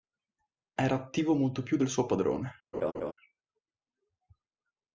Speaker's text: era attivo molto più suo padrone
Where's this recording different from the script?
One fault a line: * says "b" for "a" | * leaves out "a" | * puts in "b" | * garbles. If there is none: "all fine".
* puts in "del"